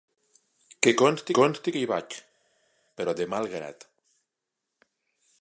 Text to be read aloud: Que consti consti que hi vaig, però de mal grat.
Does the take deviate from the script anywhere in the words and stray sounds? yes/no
no